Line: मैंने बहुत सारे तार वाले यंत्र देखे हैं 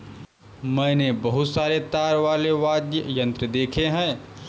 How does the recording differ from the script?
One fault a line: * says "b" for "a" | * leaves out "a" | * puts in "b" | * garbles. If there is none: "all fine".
* puts in "वाद्य"